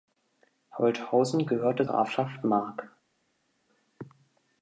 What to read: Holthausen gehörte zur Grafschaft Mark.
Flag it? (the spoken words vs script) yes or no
yes